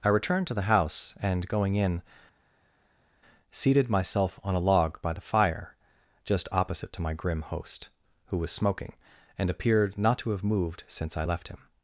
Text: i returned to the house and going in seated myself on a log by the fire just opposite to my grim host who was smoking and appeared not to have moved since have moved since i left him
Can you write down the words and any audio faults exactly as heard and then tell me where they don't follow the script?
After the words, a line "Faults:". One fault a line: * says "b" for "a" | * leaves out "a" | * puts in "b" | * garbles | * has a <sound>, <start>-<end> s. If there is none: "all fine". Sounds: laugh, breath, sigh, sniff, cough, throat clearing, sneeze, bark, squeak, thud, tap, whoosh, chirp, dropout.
i returned to the house and going in seated myself on a log by the fire just opposite to my grim host who was smoking and appeared not to have moved since i left him
Faults:
* leaves out "have moved since"